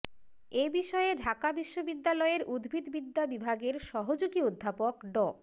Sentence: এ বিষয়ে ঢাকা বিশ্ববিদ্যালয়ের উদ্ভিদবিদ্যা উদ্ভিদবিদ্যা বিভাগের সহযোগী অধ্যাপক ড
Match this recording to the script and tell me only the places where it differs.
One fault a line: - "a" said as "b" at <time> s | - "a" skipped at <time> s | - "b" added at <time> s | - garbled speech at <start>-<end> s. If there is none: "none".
- "উদ্ভিদবিদ্যা" skipped at 3.2 s